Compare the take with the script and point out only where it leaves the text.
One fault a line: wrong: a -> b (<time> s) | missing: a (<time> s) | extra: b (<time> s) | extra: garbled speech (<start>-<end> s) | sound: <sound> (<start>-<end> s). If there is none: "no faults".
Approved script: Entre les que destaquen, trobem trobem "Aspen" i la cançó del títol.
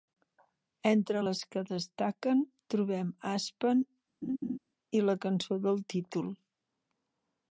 missing: trobem (3.1 s)
sound: laugh (4.2-4.6 s)